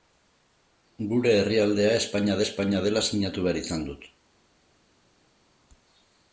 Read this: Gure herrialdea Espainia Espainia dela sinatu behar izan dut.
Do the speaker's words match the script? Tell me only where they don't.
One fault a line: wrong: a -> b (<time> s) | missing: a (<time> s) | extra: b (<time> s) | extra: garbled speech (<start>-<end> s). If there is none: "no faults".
no faults